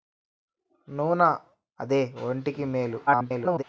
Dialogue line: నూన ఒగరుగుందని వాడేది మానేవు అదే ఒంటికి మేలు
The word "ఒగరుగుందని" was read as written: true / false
false